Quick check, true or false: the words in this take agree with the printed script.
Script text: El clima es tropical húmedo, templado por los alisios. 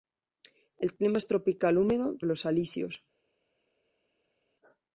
false